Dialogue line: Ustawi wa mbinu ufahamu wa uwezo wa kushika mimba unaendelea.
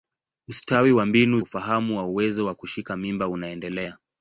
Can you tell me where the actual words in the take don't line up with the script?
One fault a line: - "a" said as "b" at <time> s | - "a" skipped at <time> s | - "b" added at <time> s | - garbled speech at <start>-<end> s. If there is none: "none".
none